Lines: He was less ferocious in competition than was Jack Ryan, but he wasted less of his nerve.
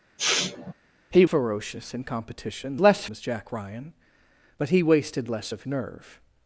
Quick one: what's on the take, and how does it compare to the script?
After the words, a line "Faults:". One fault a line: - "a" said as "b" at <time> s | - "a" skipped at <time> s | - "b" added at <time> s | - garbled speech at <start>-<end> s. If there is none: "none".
He ferocious in competition less was Jack Ryan, but he wasted less of nerve.
Faults:
- "was less" skipped at 1.3 s
- "than" said as "less" at 2.8 s
- "his" skipped at 5.6 s